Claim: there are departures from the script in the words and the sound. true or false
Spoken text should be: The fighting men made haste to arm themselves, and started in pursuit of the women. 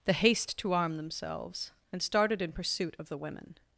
true